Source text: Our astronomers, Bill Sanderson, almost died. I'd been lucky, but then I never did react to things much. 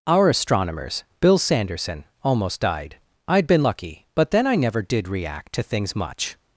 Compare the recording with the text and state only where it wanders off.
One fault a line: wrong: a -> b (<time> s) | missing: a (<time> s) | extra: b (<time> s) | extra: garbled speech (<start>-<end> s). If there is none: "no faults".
no faults